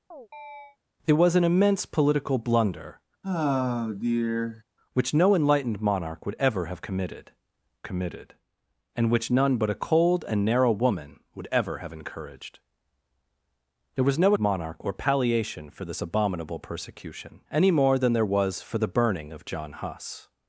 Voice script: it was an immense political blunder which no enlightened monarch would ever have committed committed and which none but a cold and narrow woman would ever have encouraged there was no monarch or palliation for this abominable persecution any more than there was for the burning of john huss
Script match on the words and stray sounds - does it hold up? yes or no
no